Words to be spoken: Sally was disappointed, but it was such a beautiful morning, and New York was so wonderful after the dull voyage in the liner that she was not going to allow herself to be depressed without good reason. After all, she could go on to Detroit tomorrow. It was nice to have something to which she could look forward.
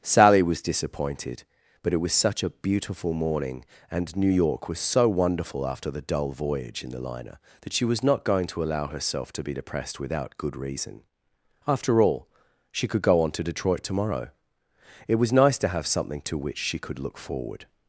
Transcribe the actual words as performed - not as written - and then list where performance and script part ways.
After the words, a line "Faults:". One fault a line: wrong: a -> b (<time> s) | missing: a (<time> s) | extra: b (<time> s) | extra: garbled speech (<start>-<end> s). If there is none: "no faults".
Sally was disappointed, but it was such a beautiful morning, and New York was so wonderful after the dull voyage in the liner that she was not going to allow herself to be depressed without good reason. After all, she could go on to Detroit tomorrow. It was nice to have something to which she could look forward.
Faults:
no faults